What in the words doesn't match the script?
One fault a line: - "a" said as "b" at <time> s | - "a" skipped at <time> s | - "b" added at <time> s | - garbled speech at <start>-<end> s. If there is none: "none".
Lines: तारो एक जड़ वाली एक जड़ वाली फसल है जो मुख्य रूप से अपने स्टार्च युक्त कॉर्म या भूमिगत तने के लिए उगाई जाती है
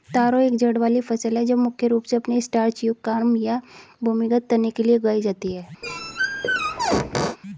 - "एक जड़ वाली" skipped at 1.0 s